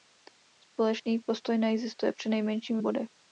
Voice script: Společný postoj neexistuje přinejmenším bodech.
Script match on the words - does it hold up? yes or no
yes